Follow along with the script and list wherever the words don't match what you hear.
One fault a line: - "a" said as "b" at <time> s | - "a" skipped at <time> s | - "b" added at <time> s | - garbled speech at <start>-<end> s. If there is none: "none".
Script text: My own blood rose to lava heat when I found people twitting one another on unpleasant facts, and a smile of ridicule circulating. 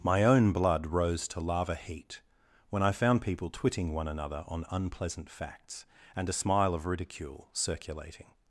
none